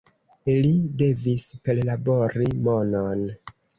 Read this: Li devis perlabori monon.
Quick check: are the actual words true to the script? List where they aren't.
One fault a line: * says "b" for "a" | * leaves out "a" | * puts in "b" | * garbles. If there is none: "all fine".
all fine